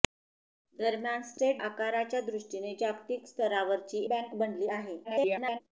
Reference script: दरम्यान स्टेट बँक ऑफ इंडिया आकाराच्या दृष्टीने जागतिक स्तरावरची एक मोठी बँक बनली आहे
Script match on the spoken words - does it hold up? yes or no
no